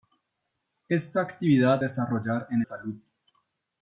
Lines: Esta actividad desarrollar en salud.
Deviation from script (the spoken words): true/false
false